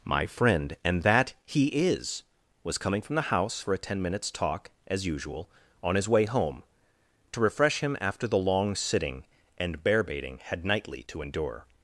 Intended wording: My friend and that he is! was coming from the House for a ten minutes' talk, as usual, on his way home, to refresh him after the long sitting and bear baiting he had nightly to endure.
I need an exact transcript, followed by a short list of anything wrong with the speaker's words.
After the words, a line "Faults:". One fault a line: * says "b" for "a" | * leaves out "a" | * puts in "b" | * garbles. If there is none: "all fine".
My friend and that he is! was coming from the House for a ten minutes' talk, as usual, on his way home, to refresh him after the long sitting and bear baiting had nightly to endure.
Faults:
* leaves out "he"